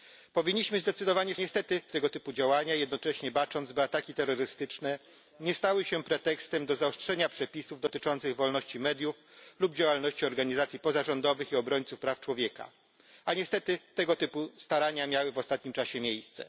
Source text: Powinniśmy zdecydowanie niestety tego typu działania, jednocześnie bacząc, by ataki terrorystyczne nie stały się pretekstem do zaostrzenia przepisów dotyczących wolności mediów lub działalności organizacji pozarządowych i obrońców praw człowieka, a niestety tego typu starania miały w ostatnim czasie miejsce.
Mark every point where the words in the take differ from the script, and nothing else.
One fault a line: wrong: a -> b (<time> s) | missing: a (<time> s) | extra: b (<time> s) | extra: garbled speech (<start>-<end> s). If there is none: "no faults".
no faults